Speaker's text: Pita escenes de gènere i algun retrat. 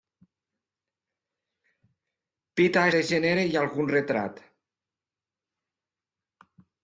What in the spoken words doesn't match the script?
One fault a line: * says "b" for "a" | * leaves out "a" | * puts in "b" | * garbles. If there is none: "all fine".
* leaves out "escenes"